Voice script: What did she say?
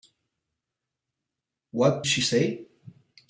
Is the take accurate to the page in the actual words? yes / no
no